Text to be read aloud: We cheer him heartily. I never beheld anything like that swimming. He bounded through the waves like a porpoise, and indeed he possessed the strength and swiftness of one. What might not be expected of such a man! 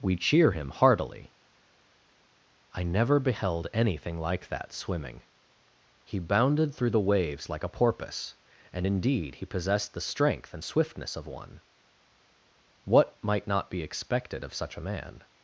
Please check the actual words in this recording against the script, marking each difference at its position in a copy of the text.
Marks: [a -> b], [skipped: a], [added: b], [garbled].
We cheer him heartily. I never beheld anything like that swimming. He bounded through the waves like a porpoise, and indeed he possessed the strength and swiftness of one. What might not be expected of such a man!